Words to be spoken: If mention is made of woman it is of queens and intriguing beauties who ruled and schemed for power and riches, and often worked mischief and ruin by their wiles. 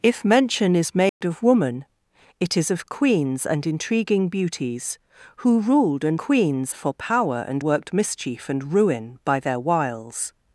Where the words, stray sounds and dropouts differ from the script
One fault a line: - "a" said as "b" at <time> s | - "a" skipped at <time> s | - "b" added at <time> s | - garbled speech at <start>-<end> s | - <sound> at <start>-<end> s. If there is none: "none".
- dropout at 1.1-1.2 s
- "schemed" said as "queens" at 6.2 s
- "riches and often" skipped at 7.6 s